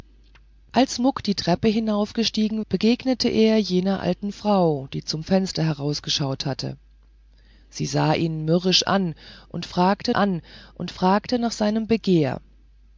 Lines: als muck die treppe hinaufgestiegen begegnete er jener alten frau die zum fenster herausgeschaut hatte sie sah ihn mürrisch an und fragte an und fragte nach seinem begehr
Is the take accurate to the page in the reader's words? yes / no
yes